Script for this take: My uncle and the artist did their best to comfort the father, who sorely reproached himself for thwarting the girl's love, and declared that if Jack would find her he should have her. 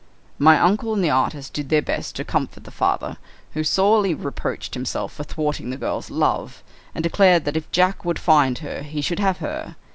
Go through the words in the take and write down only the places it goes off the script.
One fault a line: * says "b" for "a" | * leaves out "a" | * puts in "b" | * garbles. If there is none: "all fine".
all fine